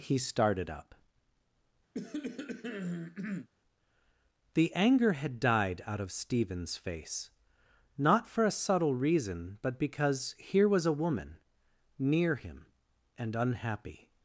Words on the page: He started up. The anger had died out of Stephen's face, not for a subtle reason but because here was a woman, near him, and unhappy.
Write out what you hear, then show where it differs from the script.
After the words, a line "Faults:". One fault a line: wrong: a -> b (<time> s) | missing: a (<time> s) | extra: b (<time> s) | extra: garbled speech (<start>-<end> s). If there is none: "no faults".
He started up. The anger had died out of Stephen's face, not for a subtle reason but because here was a woman, near him, and unhappy.
Faults:
no faults